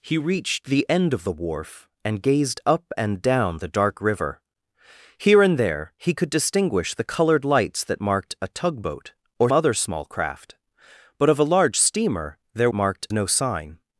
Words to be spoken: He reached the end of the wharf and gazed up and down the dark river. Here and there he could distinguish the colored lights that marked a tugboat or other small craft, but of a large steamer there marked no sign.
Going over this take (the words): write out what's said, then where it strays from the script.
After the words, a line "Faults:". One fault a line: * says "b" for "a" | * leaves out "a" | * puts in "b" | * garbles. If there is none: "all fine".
He reached the end of the wharf and gazed up and down the dark river. Here and there he could distinguish the colored lights that marked a tugboat or other small craft, but of a large steamer there marked no sign.
Faults:
all fine